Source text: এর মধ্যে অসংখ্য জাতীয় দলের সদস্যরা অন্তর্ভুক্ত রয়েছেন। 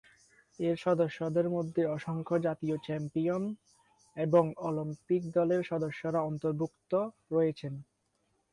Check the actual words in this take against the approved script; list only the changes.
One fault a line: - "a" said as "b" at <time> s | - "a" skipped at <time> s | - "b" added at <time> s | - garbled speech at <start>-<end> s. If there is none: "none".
- "সদস্যদের" added at 0.8 s
- "চ্যাম্পিয়ন এবং অলিম্পিক" added at 2.8 s